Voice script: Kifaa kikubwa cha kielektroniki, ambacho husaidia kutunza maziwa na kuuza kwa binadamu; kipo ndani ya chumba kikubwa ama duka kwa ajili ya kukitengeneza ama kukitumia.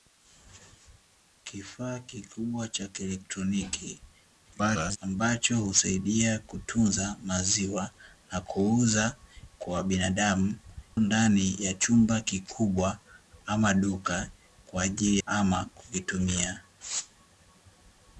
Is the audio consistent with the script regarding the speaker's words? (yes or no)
no